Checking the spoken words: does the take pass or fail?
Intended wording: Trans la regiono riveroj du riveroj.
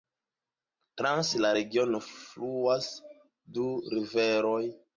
fail